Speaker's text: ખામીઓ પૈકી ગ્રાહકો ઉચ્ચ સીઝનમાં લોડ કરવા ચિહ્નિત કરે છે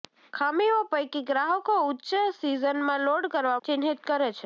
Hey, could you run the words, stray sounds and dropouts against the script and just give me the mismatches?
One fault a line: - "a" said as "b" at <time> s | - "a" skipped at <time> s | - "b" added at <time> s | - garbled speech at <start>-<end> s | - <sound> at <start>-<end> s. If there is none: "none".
none